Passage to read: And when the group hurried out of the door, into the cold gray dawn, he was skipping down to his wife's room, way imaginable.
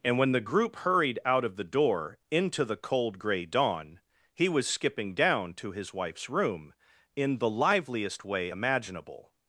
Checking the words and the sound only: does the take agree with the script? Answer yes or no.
no